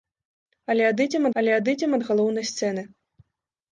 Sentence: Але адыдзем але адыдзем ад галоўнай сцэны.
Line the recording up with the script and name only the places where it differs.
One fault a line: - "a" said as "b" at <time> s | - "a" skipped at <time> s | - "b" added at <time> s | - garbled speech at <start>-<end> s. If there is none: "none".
none